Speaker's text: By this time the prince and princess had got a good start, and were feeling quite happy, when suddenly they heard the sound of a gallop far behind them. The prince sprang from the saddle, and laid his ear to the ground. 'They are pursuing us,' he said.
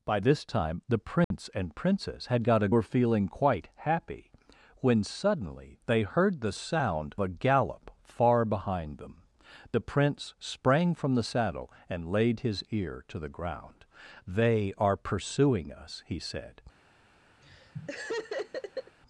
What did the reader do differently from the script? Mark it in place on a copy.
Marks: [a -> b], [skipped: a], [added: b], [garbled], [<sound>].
By this time the prince [dropout] and princess had got a [skipped: good start, and] were feeling quite happy, when suddenly they heard the sound [skipped: of] a gallop far behind them. The prince sprang from the saddle, and laid his ear to the ground. 'They are pursuing us,' he said. [laugh]